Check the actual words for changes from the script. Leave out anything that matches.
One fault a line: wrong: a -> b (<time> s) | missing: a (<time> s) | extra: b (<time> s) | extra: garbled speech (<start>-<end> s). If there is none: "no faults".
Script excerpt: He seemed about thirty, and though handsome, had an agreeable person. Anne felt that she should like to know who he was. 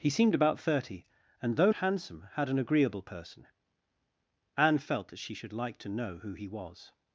no faults